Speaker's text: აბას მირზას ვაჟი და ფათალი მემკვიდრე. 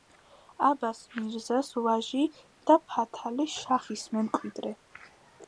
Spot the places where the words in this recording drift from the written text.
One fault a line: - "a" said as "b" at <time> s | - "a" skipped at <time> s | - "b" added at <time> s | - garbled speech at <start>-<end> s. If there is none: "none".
- "შაჰის" added at 3.6 s